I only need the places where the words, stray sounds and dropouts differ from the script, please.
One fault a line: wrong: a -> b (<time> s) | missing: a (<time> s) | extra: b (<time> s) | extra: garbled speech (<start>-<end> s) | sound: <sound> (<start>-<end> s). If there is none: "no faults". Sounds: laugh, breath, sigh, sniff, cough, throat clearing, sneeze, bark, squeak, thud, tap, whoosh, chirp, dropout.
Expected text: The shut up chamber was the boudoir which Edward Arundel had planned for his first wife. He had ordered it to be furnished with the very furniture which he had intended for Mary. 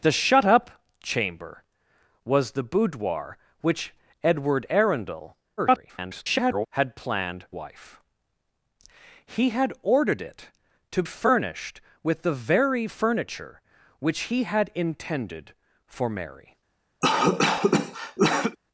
extra: garbled speech (5.6-6.7 s)
missing: for his first (7.5 s)
missing: be (11.0 s)
sound: cough (17.0-18.6 s)